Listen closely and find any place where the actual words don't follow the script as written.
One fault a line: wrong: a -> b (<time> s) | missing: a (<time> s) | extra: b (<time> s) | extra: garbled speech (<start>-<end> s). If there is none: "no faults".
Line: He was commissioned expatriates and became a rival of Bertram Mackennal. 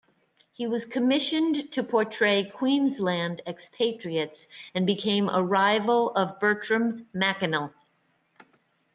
extra: to portray Queensland (1.7 s)